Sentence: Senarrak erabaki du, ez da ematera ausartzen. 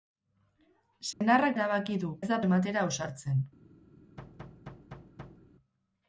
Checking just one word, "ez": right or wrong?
right